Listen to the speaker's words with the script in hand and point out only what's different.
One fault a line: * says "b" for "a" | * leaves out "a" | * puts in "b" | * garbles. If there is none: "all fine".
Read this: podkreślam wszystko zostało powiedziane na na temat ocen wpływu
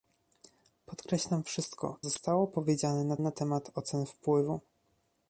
all fine